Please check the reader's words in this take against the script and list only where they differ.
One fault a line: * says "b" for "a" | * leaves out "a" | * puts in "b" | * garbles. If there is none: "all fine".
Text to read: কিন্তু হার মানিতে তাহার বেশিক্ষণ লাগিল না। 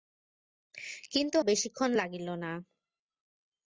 * leaves out "হার মানিতে তাহার"